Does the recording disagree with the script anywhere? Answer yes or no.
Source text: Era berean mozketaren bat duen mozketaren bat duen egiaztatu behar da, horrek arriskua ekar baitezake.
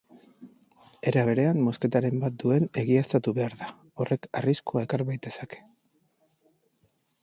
yes